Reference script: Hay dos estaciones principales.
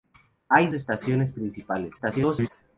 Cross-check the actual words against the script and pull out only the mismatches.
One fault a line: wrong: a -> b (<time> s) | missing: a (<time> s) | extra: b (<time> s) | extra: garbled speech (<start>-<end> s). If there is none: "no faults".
missing: dos (0.7 s)
extra: garbled speech (2.0-2.5 s)